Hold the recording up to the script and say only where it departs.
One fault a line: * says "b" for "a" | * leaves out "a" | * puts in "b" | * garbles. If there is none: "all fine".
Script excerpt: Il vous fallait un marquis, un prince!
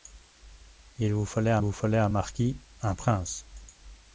* puts in "vous fallait un"